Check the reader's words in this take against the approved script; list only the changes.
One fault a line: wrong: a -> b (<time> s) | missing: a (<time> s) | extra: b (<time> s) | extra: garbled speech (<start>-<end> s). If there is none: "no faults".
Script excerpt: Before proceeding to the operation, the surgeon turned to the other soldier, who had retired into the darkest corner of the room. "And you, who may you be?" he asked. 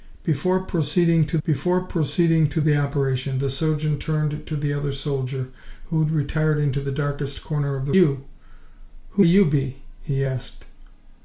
extra: before proceeding to (1.4 s)
missing: room And (7.9 s)
missing: may (9.2 s)